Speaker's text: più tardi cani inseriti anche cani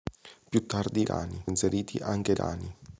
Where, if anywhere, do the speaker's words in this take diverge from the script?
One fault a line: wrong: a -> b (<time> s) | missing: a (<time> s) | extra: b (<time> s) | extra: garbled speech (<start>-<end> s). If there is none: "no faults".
no faults